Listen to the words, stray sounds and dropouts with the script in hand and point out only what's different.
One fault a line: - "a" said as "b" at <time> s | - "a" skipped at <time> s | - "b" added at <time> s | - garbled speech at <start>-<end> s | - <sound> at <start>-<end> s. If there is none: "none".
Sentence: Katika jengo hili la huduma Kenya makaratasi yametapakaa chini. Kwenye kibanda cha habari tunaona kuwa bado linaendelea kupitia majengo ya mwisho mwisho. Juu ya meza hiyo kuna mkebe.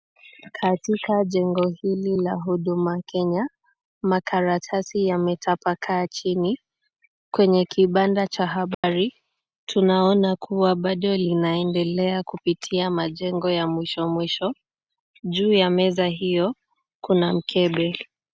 - dropout at 8.7-8.8 s